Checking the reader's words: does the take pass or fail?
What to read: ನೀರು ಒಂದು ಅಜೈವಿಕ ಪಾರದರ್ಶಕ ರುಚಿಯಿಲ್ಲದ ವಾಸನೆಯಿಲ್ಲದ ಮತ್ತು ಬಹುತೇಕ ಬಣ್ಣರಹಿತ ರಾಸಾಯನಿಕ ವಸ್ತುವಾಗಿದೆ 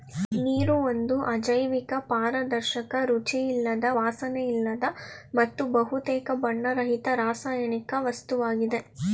pass